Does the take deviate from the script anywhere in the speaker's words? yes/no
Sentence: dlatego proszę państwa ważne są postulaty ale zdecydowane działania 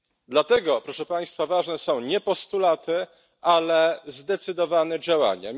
yes